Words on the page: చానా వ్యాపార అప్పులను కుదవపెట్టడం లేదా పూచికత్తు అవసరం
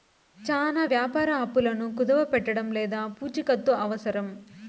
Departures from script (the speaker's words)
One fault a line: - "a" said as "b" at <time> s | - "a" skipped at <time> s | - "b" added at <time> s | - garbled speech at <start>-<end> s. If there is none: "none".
none